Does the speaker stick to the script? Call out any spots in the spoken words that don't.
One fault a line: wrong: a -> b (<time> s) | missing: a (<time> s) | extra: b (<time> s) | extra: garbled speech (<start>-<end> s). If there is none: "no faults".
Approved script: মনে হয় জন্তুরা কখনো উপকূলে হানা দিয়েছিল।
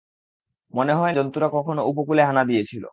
no faults